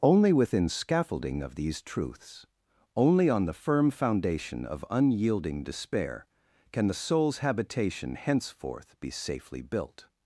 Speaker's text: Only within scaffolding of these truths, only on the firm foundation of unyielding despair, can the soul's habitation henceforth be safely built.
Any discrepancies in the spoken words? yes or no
no